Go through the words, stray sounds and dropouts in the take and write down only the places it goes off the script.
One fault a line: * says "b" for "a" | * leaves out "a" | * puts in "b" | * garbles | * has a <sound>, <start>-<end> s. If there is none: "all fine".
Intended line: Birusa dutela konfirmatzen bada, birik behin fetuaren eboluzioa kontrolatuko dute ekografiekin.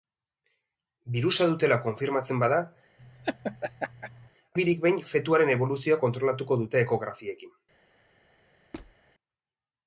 * has a laugh, 3.0-4.3 s
* has a squeak, 8.7-9.0 s